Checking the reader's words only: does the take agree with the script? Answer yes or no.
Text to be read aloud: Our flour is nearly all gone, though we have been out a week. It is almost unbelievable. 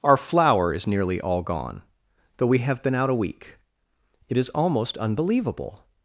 yes